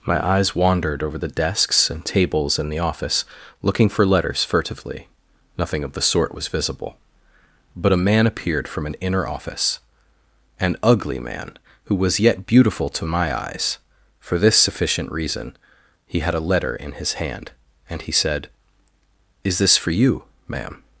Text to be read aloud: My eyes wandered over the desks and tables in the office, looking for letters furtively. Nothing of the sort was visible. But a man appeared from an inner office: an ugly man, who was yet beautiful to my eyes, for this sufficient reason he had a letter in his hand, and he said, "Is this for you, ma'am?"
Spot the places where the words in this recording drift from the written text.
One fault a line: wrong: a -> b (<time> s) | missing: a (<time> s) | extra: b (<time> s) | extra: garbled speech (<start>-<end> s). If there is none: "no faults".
no faults